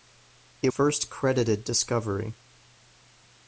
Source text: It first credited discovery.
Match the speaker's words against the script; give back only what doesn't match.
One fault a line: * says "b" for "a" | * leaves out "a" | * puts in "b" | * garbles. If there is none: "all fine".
all fine